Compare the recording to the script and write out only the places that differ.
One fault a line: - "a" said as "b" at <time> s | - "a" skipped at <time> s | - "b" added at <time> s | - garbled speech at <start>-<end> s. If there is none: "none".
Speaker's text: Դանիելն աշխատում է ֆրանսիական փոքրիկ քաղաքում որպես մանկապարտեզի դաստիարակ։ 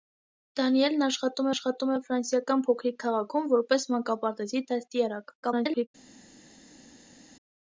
- "աշխատում" added at 1.5 s
- garbled speech at 5.4-5.9 s